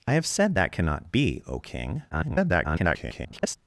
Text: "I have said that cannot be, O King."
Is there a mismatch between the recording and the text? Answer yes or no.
yes